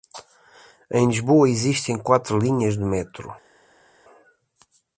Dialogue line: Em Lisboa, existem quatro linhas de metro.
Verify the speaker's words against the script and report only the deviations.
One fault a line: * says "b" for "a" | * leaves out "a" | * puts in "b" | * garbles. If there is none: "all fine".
all fine